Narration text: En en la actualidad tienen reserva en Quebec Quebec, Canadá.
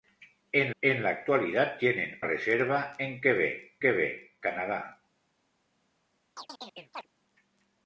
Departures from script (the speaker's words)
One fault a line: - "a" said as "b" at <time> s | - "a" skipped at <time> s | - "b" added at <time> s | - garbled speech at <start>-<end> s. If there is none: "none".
none